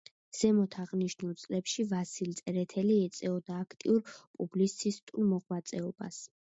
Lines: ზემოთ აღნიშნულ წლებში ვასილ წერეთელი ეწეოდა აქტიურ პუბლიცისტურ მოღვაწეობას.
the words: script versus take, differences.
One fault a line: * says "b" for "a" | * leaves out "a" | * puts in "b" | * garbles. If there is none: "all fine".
all fine